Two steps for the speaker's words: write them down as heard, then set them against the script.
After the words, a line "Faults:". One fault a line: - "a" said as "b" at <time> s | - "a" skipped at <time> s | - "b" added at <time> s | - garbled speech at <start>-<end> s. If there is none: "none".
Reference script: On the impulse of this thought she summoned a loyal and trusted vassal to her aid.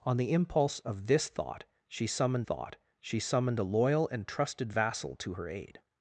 On the impulse of this thought she summoned thought she summoned a loyal and trusted vassal to her aid.
Faults:
- "thought she summoned" added at 2.4 s